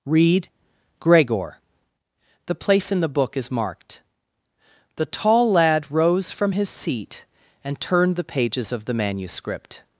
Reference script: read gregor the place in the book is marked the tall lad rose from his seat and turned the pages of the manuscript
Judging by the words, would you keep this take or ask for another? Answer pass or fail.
pass